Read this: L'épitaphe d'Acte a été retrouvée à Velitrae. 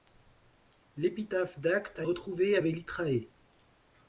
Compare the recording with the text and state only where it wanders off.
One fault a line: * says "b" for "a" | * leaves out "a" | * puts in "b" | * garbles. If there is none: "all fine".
* leaves out "été"